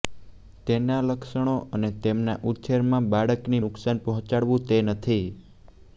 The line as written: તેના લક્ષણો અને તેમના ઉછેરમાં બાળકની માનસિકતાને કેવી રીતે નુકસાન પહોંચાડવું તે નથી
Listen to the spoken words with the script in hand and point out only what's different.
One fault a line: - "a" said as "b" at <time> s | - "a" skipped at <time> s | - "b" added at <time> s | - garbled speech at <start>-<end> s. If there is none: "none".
- "માનસિકતાને કેવી રીતે" skipped at 3.6 s